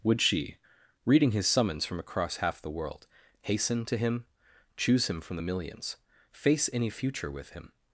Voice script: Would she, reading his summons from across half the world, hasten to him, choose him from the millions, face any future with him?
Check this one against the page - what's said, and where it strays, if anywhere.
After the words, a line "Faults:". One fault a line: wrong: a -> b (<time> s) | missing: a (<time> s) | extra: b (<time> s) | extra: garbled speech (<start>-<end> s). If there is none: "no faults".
Would she, reading his summons from across half the world, hasten to him, choose him from the millions, face any future with him?
Faults:
no faults